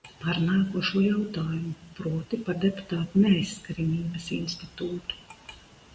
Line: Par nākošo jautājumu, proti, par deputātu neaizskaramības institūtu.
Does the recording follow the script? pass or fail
pass